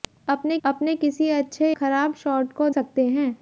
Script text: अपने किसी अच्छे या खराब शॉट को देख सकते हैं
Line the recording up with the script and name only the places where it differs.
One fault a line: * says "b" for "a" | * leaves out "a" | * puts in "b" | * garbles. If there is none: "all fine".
* puts in "अपने"
* leaves out "या"
* leaves out "देख"